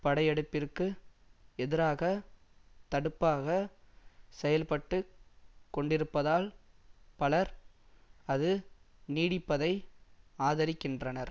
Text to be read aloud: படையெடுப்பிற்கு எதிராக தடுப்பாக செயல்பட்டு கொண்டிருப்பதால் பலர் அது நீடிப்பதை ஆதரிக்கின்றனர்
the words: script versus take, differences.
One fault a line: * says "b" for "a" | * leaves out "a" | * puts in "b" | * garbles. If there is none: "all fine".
all fine